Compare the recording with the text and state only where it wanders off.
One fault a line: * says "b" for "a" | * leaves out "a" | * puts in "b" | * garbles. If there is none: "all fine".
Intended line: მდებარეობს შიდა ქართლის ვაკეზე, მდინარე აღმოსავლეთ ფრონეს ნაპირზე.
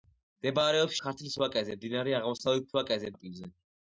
* leaves out "შიდა"
* says "ვაკეზე" for "ფრონეს"